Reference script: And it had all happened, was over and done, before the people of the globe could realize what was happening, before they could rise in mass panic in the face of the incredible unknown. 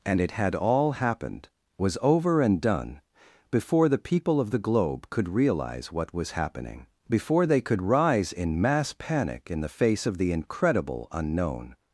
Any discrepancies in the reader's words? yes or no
no